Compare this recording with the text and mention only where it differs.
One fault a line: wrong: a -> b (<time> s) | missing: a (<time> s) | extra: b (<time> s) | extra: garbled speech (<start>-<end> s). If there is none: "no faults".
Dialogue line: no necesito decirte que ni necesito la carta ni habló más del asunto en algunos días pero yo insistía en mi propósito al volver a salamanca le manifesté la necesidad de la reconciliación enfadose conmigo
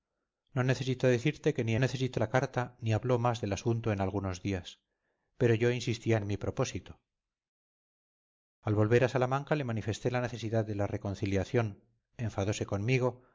no faults